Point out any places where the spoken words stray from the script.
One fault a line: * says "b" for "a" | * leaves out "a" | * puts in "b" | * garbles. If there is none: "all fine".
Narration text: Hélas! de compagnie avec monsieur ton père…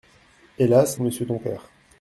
* leaves out "de compagnie avec"